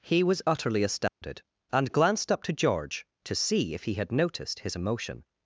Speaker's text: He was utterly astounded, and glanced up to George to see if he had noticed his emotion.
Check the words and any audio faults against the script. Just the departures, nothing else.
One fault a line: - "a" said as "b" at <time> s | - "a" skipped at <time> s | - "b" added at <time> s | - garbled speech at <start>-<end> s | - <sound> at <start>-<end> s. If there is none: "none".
- dropout at 1.1-1.2 s